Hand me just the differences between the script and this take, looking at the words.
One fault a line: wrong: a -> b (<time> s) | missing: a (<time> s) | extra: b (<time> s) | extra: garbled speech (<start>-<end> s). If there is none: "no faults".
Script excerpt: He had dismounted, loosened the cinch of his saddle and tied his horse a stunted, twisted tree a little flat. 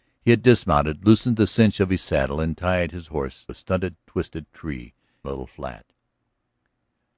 no faults